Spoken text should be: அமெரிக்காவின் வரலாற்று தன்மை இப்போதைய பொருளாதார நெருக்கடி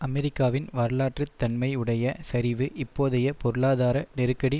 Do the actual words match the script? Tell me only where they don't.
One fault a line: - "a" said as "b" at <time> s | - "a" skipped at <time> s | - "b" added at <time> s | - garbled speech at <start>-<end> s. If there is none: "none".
- "உடைய சரிவு" added at 1.8 s